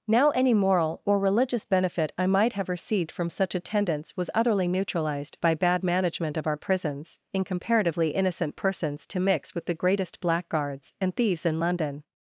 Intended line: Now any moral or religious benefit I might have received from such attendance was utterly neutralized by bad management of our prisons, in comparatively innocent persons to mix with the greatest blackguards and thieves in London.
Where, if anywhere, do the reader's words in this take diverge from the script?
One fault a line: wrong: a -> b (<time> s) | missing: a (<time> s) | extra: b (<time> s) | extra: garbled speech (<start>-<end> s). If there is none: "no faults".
no faults